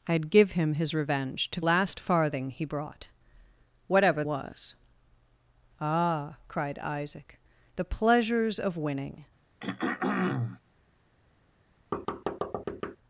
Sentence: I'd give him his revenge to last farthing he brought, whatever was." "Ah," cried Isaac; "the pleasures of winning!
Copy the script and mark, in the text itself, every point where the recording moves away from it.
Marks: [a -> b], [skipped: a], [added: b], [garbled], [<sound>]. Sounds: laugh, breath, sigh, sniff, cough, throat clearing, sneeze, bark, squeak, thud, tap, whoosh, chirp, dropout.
I'd give him his revenge to last farthing he brought, whatever was." "Ah," cried Isaac; "the pleasures of winning! [throat clearing] [thud]